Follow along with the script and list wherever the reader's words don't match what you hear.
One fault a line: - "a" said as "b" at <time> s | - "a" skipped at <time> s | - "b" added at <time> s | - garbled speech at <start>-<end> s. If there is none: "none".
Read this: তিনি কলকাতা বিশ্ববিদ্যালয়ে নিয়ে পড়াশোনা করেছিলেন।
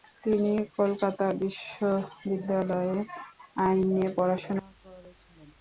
- "আইন" added at 3.6 s